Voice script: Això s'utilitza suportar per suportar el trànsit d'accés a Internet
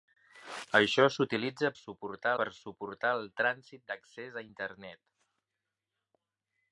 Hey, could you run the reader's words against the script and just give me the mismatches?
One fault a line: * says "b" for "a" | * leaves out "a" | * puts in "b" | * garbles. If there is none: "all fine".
all fine